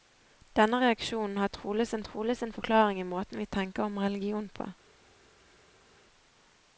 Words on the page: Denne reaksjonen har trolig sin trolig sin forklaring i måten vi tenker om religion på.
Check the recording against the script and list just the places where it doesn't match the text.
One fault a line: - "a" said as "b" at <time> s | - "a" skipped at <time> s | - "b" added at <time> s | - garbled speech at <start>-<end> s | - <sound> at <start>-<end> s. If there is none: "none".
none